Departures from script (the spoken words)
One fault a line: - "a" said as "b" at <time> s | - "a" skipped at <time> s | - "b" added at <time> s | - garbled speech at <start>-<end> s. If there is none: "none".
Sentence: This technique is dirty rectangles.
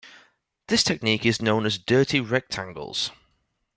- "known as" added at 1.4 s